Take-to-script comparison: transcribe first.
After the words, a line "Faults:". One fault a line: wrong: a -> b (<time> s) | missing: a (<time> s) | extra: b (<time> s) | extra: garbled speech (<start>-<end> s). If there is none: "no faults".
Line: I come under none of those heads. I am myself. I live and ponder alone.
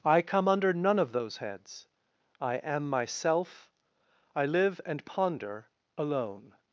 I come under none of those heads. I am myself. I live and ponder alone.
Faults:
no faults